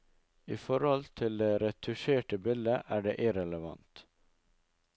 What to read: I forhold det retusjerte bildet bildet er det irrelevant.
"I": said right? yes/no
yes